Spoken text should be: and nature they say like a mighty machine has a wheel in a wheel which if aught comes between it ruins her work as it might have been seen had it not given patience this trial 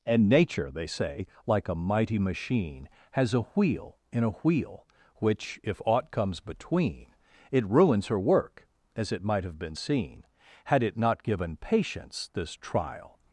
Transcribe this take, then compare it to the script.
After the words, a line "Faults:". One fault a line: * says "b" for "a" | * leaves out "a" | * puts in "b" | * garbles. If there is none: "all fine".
and nature they say like a mighty machine has a wheel in a wheel which if aught comes between it ruins her work as it might have been seen had it not given patience this trial
Faults:
all fine